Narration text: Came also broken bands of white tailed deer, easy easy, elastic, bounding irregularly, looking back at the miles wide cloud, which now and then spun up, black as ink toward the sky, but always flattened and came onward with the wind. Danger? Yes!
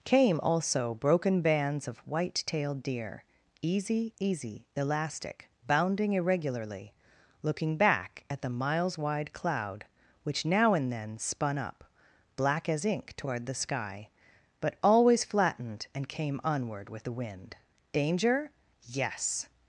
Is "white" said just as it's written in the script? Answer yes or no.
yes